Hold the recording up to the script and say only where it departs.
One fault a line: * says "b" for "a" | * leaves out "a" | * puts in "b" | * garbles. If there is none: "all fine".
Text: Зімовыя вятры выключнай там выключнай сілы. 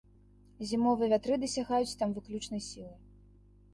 * says "дасягаюць" for "выключнай"